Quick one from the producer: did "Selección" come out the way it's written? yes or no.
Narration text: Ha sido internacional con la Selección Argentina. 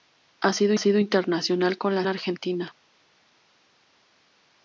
no